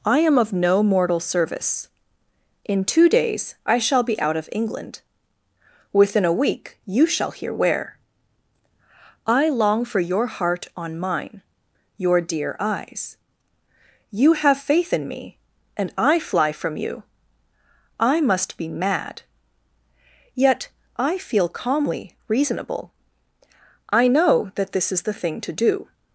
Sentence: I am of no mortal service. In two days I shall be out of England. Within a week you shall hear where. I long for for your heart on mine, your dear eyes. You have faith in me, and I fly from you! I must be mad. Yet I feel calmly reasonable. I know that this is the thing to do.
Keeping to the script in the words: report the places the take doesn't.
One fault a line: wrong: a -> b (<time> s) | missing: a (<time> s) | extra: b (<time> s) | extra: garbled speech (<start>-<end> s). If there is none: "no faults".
missing: for (10.0 s)